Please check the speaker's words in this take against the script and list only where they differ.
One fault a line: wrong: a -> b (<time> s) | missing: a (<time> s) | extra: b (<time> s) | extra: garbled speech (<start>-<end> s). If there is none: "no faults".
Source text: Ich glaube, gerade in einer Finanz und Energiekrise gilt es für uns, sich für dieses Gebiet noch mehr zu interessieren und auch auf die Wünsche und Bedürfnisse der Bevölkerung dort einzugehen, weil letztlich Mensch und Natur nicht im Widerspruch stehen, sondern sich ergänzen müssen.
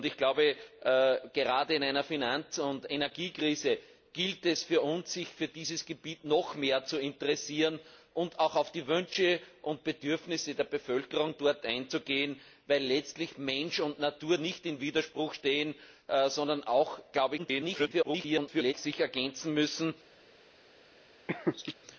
extra: garbled speech (17.4-18.7 s)